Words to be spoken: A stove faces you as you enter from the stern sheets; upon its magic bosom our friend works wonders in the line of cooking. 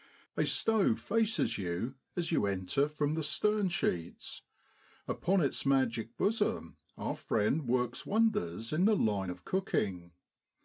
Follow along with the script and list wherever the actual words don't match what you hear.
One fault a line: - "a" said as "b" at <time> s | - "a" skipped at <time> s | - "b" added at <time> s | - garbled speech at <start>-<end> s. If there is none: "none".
none